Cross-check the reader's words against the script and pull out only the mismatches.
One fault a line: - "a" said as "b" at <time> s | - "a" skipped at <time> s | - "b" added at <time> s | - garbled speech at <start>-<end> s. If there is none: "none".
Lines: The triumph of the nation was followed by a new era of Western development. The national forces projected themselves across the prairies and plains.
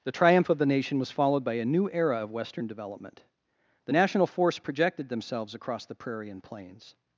- "forces" said as "force" at 4.3 s
- "prairies" said as "prairie" at 5.9 s